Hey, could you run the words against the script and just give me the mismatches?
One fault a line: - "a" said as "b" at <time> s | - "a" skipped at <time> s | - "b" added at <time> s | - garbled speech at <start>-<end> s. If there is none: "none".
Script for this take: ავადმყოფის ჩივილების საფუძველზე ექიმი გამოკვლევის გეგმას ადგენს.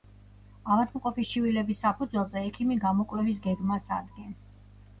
none